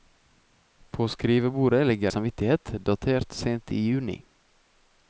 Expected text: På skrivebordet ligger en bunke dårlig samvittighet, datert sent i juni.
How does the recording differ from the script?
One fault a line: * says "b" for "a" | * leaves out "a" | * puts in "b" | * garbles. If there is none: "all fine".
* leaves out "en bunke dårlig"